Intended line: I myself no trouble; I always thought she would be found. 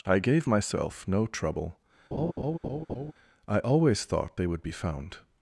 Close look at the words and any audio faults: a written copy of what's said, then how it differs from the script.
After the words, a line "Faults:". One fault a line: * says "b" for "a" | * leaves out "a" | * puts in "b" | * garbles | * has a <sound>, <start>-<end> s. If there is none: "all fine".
I gave myself no trouble; I always thought they would be found.
Faults:
* puts in "gave"
* has a laugh, 2.1-3.1 s
* says "they" for "she"